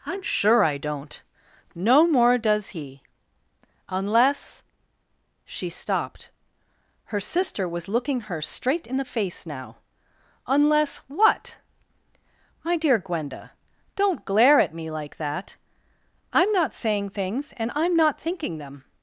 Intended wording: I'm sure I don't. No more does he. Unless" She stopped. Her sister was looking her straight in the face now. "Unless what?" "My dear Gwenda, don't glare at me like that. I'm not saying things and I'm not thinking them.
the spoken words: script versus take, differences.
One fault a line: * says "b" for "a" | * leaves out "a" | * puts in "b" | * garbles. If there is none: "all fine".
all fine